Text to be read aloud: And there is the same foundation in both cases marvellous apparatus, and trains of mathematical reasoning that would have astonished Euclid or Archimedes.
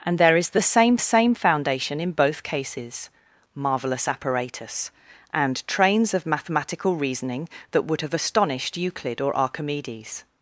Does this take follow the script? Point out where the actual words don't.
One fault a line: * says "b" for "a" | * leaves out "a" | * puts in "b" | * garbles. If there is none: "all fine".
* puts in "same"